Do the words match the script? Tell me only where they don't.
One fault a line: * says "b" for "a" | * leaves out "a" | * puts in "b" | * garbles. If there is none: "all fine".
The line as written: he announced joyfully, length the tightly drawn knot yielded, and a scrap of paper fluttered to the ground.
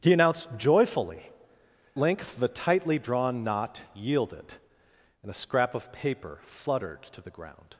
all fine